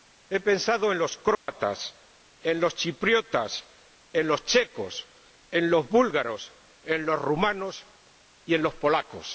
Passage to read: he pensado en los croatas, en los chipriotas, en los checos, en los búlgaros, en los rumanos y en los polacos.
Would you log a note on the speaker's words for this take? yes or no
no